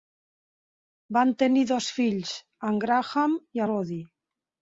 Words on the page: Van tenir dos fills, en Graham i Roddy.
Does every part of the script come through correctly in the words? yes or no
yes